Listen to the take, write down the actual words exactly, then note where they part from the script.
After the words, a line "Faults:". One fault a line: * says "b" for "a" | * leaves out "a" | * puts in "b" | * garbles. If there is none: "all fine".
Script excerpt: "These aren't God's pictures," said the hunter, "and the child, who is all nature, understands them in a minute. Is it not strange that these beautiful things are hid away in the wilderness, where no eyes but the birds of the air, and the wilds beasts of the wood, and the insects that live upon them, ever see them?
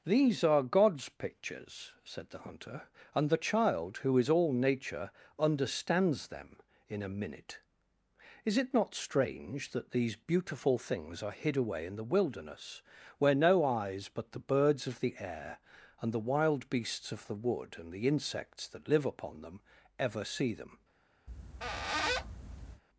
"These are God's pictures," said the hunter, "and the child, who is all nature, understands them in a minute. Is it not strange that these beautiful things are hid away in the wilderness, where no eyes but the birds of the air, and the wild beasts of the wood, and the insects that live upon them, ever see them?
Faults:
* says "are" for "aren't"
* says "wild" for "wilds"